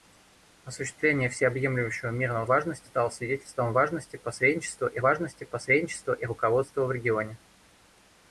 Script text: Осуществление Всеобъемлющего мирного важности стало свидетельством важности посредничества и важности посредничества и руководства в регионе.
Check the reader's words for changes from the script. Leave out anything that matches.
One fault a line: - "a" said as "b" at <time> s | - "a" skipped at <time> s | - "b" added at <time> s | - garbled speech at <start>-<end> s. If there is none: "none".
none